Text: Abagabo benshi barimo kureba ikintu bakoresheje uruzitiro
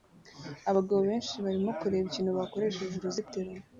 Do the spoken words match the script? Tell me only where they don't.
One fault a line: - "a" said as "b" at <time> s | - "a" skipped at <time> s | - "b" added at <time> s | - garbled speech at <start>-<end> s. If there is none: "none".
none